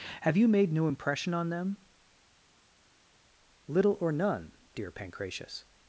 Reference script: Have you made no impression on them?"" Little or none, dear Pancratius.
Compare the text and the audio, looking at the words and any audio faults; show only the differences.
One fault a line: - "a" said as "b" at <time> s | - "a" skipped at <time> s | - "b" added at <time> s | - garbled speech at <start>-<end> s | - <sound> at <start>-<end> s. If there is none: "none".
none